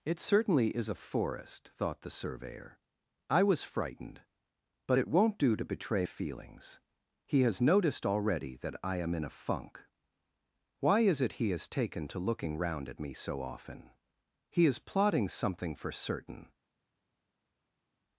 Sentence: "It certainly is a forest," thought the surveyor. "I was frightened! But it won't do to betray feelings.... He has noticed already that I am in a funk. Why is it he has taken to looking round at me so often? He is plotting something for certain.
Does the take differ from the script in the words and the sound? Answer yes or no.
no